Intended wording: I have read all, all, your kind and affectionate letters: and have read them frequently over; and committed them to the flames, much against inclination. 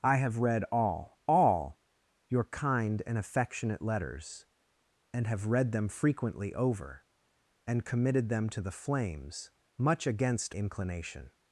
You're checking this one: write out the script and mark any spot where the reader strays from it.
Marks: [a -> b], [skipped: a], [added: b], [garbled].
I have read all, all, your kind and affectionate letters: and have read them frequently over; and committed them to the flames, much against inclination.